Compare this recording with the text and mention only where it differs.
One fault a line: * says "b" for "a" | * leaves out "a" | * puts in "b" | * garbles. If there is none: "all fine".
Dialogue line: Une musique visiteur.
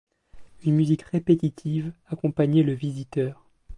* puts in "répétitive accompagnait le"